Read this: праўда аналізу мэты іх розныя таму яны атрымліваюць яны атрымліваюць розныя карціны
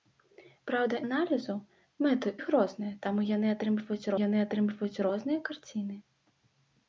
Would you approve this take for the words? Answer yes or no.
yes